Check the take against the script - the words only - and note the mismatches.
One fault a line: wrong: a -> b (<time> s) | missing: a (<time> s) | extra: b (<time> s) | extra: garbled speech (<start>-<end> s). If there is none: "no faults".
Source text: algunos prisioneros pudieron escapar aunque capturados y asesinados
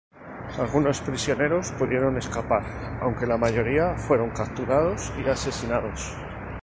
extra: la mayoría fueron (3.3 s)